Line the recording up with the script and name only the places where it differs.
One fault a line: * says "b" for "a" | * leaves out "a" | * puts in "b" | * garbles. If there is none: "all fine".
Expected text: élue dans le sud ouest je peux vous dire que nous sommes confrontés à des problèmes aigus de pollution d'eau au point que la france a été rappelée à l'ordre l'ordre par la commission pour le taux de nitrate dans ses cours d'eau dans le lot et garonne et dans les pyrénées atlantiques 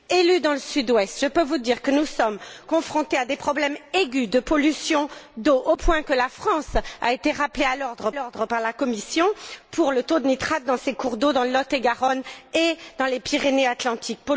all fine